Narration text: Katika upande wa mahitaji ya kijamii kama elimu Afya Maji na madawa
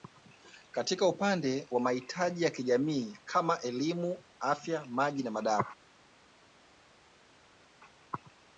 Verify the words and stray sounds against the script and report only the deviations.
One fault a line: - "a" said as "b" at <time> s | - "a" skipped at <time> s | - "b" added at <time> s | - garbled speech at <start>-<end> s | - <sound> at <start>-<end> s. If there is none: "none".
none